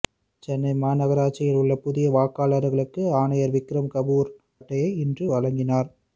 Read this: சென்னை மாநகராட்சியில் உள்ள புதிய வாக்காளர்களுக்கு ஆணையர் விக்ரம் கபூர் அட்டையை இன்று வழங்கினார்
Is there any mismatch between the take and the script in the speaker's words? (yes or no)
no